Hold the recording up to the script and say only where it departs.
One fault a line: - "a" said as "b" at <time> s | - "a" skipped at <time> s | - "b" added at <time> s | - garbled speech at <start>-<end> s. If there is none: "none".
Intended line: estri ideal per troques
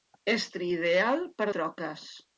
none